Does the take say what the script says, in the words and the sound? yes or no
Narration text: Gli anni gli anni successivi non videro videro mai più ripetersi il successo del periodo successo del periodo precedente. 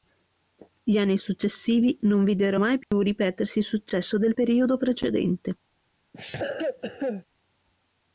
no